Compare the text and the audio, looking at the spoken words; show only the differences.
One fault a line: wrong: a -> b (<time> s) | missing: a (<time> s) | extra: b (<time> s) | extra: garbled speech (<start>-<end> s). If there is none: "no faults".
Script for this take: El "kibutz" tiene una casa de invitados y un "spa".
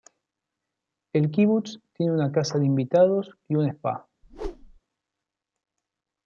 no faults